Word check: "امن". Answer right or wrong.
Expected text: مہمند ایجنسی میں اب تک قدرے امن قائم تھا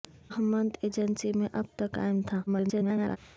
wrong